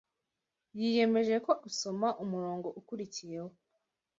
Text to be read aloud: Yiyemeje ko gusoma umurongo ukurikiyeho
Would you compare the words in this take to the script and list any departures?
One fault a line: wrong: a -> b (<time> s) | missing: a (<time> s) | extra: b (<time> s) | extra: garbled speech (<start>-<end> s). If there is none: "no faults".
no faults